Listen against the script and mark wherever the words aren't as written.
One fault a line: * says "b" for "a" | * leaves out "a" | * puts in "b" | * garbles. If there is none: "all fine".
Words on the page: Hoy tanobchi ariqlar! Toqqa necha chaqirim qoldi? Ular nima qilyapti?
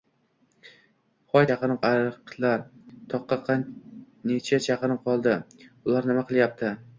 * says "chaqirim" for "tanobchi"